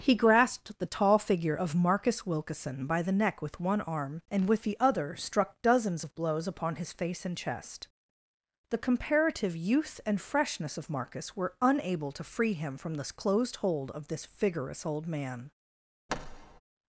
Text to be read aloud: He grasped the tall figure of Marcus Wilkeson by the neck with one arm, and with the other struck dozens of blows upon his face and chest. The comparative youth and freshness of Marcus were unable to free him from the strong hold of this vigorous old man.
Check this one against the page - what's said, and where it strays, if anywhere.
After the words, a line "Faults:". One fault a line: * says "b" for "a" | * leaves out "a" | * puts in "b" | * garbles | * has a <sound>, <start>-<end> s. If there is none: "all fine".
He grasped the tall figure of Marcus Wilkeson by the neck with one arm, and with the other struck dozens of blows upon his face and chest. The comparative youth and freshness of Marcus were unable to free him from the closed hold of this vigorous old man.
Faults:
* says "closed" for "strong"
* has a thud, 16.1-16.6 s